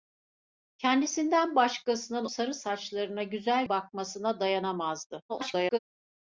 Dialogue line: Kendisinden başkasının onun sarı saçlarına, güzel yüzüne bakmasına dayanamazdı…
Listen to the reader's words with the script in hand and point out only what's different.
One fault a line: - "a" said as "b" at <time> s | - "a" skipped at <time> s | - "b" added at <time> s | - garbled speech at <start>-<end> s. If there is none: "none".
- "onun" skipped at 2.2 s
- "yüzüne" skipped at 3.7 s
- garbled speech at 5.3-5.8 s